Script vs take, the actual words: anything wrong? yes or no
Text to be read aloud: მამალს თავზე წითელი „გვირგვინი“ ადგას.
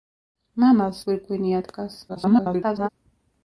yes